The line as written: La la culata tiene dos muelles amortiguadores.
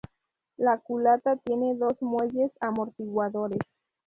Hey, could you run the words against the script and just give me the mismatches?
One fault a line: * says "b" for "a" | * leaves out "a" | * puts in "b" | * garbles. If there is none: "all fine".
* leaves out "la"